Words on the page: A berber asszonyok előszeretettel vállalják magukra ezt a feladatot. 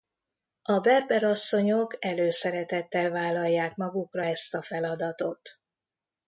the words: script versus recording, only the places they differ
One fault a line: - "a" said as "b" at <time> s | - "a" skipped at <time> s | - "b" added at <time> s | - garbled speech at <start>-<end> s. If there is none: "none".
none